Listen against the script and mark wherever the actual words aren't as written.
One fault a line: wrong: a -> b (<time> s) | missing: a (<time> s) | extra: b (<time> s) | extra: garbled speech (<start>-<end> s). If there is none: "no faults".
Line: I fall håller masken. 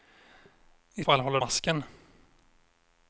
no faults